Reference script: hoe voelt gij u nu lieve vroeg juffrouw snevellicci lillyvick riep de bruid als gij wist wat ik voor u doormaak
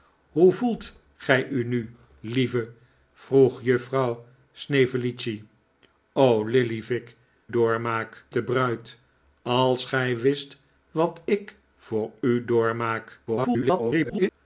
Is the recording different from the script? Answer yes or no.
yes